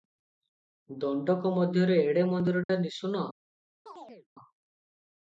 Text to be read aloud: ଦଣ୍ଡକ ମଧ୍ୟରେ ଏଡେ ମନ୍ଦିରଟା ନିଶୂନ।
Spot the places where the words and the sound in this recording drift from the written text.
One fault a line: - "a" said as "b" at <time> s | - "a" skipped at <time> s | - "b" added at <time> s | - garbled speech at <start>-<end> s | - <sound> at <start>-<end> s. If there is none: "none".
- dropout at 2.6-2.7 s
- chirp at 3.9-4.3 s